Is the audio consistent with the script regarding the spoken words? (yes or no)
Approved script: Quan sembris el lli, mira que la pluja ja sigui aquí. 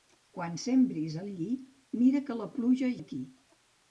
no